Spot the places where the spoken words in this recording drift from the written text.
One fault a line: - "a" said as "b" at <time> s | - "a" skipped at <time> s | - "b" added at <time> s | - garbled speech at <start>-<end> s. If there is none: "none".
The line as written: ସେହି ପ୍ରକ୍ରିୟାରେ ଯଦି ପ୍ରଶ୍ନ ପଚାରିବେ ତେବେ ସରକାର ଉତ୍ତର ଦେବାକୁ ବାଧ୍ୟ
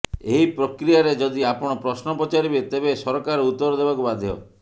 - "ସେହି" said as "ଏହି" at 0.3 s
- "ଆପଣ" added at 1.5 s